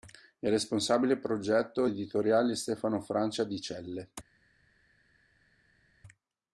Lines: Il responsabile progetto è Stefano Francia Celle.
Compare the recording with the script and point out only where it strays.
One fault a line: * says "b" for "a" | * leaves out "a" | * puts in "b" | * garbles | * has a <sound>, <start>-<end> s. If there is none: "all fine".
* puts in "editoriale"
* puts in "di"